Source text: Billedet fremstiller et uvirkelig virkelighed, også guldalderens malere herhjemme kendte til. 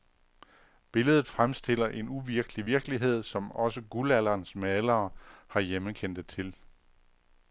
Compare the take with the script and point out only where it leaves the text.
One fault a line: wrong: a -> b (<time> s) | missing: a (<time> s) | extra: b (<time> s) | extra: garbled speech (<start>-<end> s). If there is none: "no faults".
wrong: et -> en (1.9 s)
extra: som (3.2 s)